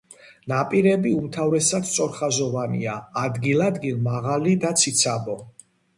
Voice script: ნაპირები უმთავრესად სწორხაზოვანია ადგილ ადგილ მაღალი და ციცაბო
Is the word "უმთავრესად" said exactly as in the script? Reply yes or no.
yes